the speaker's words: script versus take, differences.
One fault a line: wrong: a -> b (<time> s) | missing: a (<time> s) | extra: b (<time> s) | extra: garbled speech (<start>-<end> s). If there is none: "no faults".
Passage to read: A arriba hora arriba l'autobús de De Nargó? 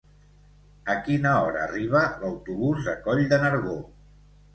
wrong: arriba -> quina (1.1 s)
extra: Coll (3.1 s)